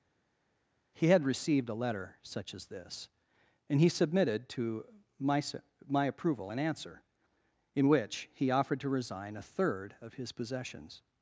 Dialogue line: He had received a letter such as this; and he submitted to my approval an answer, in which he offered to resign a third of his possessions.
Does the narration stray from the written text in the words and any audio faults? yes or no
yes